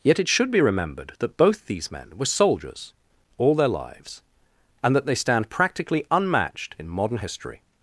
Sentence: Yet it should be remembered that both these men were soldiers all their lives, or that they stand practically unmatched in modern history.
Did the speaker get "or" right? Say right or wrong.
wrong